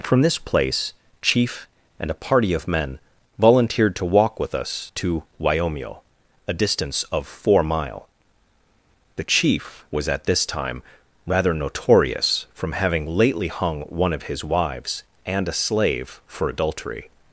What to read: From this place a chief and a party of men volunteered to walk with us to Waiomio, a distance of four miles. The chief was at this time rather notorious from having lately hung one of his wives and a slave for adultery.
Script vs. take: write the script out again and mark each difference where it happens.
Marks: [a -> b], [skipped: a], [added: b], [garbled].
From this place [skipped: a] chief and a party of men volunteered to walk with us to Waiomio, a distance of four [miles. -> mile] The chief was at this time rather notorious from having lately hung one of his wives and a slave for adultery.